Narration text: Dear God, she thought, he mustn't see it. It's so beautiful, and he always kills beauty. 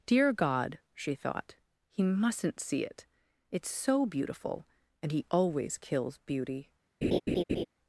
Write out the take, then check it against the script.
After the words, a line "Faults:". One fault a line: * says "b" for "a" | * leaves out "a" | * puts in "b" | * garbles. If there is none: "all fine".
Dear God, she thought, he mustn't see it. It's so beautiful, and he always kills beauty.
Faults:
all fine